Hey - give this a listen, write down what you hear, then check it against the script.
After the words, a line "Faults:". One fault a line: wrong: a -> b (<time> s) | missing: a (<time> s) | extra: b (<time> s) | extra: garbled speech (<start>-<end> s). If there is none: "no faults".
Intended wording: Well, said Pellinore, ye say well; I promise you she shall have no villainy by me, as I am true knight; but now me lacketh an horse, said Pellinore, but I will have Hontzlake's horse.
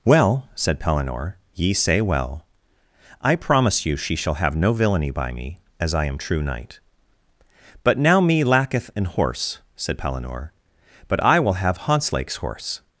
Well, said Pellinore, ye say well; I promise you she shall have no villainy by me, as I am true knight; but now me lacketh an horse, said Pellinore, but I will have Hontzlake's horse.
Faults:
no faults